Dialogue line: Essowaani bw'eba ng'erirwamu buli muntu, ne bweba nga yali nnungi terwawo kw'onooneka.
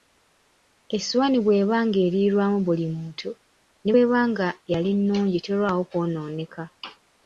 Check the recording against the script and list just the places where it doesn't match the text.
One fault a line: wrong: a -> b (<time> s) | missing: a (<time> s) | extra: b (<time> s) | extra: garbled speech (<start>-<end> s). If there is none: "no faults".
no faults